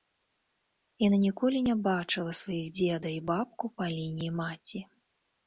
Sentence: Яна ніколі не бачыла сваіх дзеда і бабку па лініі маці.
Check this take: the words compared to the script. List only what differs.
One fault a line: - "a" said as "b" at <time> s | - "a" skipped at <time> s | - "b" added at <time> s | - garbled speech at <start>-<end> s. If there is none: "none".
none